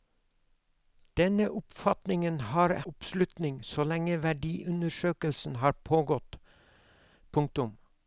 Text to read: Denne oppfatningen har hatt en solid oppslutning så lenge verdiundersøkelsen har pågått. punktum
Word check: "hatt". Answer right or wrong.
wrong